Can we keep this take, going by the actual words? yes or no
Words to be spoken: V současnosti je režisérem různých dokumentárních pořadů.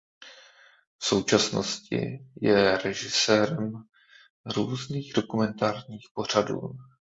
yes